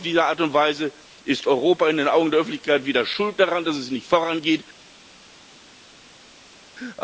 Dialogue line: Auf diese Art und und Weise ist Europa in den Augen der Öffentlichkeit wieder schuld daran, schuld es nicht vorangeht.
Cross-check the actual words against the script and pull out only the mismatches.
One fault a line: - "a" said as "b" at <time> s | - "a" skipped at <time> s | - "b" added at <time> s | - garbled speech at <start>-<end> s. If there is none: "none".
- "und" skipped at 0.5 s
- "schuld" said as "dass" at 3.6 s